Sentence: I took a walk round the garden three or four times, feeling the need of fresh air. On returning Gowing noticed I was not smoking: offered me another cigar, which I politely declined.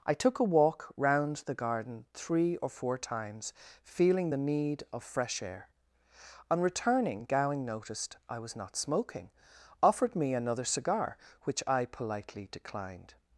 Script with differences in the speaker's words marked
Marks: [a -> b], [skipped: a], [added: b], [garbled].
I took a walk round the garden three or four times, feeling the need of fresh air. On returning Gowing noticed I was not smoking: offered me another cigar, which I politely declined.